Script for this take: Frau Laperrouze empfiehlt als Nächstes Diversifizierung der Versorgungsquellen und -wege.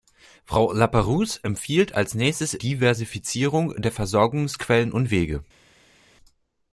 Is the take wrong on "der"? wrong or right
right